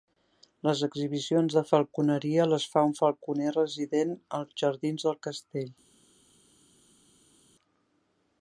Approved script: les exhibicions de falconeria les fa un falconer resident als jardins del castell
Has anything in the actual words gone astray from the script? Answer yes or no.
no